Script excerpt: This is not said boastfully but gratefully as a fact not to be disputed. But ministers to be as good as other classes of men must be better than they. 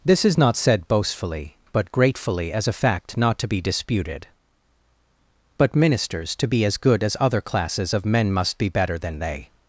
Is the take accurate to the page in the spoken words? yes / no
yes